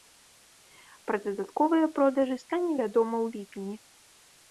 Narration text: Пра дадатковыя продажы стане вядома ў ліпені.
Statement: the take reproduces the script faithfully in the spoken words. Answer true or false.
true